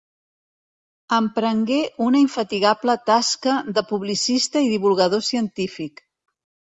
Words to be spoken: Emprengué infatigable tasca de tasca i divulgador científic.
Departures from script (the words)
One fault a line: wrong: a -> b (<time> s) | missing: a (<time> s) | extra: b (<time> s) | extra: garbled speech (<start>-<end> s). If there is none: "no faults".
extra: una (2.1 s)
wrong: tasca -> publicista (3.9 s)